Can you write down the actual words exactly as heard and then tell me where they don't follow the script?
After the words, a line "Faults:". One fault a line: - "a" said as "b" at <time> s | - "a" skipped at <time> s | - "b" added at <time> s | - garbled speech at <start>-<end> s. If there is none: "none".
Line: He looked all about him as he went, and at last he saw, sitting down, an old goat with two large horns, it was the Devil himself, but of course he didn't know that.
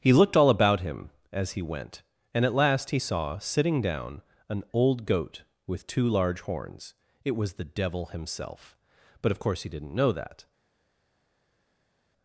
He looked all about him as he went, and at last he saw, sitting down, an old goat with two large horns, it was the Devil himself, but of course he didn't know that.
Faults:
none